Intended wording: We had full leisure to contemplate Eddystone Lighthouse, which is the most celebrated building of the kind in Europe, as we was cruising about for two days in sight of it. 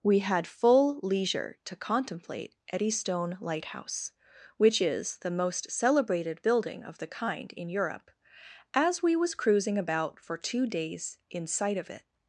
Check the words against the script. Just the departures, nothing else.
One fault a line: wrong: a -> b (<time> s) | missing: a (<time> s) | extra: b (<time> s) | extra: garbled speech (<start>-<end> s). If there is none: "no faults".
no faults